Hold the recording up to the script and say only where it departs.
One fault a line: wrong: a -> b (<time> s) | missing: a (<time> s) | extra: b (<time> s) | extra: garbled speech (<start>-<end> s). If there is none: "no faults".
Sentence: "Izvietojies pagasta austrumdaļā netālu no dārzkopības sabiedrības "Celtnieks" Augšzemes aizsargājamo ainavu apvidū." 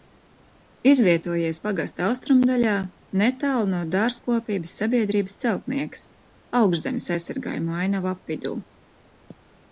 no faults